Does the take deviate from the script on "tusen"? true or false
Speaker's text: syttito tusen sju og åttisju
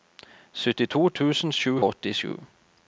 false